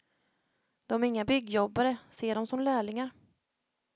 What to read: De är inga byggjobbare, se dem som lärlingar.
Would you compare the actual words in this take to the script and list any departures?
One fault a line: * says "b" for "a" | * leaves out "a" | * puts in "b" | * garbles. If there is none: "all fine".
all fine